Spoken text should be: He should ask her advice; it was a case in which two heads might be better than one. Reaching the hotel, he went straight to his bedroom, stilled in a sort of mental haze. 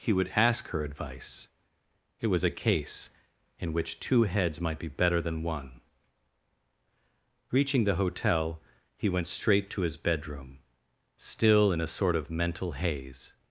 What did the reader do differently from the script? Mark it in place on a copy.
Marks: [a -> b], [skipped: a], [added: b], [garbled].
He [should -> would] ask her advice; it was a case in which two heads might be better than one. Reaching the hotel, he went straight to his bedroom, [stilled -> still] in a sort of mental haze.